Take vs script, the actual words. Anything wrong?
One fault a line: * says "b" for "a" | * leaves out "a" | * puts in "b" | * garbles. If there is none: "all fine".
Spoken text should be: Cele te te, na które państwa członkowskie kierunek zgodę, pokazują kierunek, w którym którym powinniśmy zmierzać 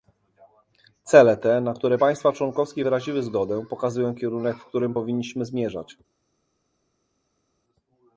* leaves out "te"
* says "wyraziły" for "kierunek"
* leaves out "którym"